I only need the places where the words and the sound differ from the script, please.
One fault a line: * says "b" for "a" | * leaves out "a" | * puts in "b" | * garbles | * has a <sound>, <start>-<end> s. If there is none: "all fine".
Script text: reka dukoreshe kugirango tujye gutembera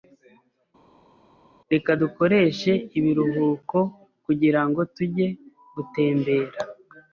* puts in "ibiruhuko"